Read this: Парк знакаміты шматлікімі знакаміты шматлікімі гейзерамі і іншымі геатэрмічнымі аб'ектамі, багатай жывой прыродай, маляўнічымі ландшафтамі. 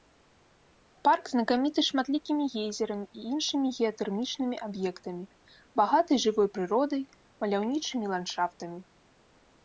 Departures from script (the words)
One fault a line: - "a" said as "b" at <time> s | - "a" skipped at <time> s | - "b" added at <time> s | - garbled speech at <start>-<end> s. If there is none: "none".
- "знакаміты шматлікімі" skipped at 2.5 s